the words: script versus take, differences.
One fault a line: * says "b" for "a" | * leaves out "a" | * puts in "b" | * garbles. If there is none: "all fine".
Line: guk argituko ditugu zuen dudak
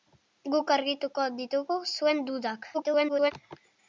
* garbles